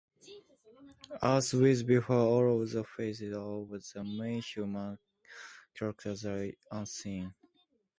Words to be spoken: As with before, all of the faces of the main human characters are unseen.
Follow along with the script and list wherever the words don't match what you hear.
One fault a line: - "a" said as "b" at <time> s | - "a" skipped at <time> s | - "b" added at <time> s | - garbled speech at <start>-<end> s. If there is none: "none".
none